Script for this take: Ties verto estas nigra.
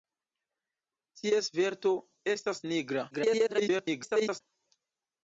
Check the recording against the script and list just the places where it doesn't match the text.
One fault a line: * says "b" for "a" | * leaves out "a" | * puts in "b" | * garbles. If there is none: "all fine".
* garbles